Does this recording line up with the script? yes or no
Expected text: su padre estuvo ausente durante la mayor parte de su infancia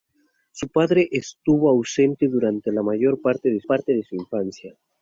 no